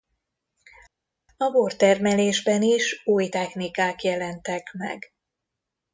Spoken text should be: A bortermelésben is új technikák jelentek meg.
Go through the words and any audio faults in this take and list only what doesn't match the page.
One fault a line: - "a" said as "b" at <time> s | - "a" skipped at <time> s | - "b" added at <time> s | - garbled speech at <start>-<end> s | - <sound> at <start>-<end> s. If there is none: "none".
none